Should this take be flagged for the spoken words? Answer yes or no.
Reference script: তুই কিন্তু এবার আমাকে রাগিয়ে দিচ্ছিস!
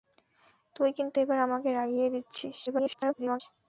yes